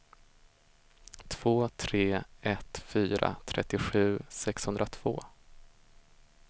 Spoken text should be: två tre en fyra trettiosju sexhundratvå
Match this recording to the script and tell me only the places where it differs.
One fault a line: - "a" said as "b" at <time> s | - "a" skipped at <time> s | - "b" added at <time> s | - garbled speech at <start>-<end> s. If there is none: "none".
- "en" said as "ett" at 2.4 s